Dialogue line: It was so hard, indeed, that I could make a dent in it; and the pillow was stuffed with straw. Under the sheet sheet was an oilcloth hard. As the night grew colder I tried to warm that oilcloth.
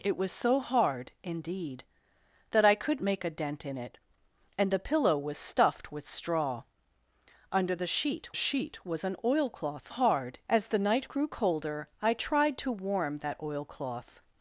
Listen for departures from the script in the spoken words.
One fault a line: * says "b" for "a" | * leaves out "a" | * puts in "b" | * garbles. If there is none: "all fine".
all fine